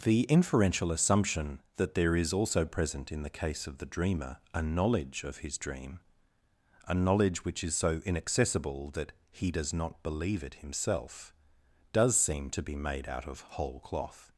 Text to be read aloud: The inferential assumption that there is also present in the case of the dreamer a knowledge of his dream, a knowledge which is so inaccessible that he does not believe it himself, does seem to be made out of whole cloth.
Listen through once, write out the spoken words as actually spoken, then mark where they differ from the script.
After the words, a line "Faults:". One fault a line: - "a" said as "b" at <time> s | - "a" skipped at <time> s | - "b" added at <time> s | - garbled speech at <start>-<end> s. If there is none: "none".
The inferential assumption that there is also present in the case of the dreamer a knowledge of his dream, a knowledge which is so inaccessible that he does not believe it himself, does seem to be made out of whole cloth.
Faults:
none